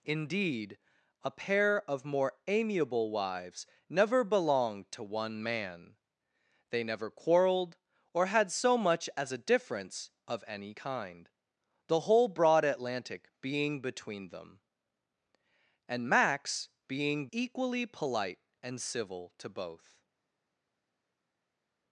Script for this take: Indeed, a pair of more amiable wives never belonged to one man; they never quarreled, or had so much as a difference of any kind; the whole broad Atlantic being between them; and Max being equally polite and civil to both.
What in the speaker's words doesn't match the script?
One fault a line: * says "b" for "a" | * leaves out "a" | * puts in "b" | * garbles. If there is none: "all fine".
all fine